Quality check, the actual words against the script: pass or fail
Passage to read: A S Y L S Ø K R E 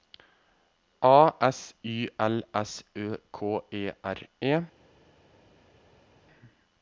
fail